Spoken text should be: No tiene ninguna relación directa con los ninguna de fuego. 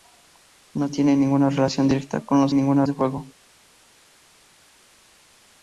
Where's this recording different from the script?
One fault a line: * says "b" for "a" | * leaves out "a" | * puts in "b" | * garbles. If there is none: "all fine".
all fine